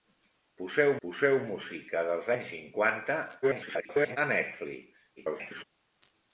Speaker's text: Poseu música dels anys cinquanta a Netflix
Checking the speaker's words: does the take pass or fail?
fail